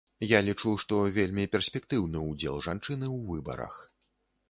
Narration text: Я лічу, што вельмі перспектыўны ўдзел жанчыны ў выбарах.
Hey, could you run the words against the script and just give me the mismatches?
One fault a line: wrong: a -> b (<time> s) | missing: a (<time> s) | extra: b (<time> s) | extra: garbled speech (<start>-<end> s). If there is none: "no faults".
no faults